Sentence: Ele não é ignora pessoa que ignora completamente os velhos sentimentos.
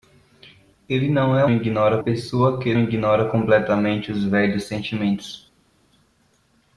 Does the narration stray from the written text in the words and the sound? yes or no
no